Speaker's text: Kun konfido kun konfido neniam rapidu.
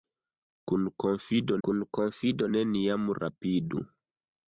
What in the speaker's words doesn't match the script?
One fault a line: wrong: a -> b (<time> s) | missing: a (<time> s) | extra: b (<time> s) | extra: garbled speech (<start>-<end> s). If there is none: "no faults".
no faults